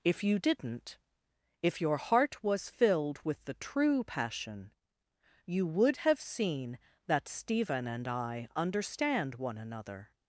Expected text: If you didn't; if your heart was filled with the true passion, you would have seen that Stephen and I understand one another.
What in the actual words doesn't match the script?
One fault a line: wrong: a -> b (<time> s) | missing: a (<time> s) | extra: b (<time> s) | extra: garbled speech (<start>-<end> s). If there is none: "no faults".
no faults